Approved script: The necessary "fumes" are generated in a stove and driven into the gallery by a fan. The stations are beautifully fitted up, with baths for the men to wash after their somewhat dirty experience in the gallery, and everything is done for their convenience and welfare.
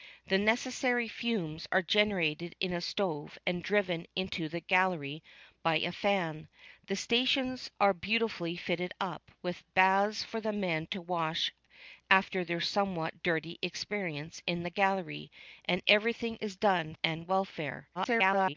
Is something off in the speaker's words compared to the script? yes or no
yes